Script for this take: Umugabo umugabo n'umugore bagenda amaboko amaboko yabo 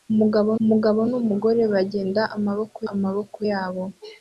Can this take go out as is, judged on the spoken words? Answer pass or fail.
pass